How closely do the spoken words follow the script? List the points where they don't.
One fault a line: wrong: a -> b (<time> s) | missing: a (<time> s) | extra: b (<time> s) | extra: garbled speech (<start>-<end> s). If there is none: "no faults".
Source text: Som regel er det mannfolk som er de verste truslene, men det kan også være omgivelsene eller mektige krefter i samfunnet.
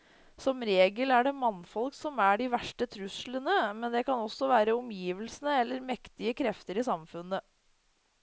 no faults